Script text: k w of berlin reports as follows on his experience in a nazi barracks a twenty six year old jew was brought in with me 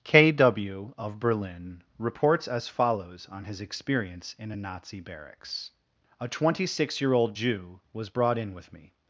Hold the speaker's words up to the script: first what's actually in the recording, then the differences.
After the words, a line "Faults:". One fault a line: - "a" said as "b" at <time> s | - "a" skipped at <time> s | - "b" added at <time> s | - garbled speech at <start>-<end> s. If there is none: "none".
k w of berlin reports as follows on his experience in a nazi barracks a twenty six year old jew was brought in with me
Faults:
none